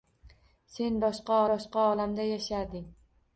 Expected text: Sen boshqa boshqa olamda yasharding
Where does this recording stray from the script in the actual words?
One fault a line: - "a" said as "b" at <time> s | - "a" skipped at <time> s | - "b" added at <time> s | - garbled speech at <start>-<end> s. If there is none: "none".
none